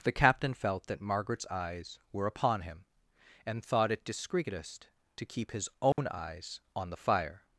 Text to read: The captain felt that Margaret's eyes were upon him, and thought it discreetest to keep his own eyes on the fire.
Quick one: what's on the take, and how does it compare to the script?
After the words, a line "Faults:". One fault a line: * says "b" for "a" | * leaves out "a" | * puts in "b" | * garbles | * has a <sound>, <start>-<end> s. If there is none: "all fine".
The captain felt that Margaret's eyes were upon him, and thought it discreetest to keep his own eyes on the fire.
Faults:
* has a dropout, 5.9-6.0 s